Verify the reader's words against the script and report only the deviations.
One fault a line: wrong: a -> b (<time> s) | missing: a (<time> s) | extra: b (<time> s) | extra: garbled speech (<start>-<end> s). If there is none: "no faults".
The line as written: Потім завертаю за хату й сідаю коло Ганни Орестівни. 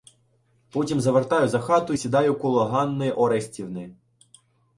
no faults